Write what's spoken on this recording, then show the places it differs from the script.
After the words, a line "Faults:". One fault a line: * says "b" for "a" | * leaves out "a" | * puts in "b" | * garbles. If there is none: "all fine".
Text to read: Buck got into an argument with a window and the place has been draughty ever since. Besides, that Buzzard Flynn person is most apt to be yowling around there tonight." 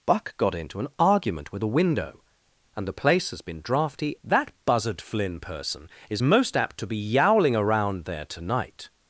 Buck got into an argument with a window and the place has been draughty that Buzzard Flynn person is most apt to be yowling around there tonight."
Faults:
* leaves out "ever since Besides"